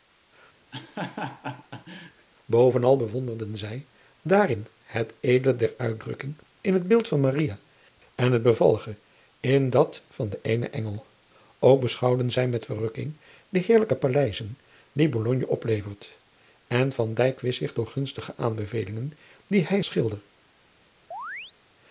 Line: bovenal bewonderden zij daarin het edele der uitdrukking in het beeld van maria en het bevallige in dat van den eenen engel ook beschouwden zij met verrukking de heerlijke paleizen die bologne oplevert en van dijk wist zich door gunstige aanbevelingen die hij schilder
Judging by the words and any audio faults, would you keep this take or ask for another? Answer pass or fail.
fail